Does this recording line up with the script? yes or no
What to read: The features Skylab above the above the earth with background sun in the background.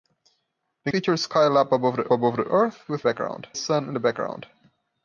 yes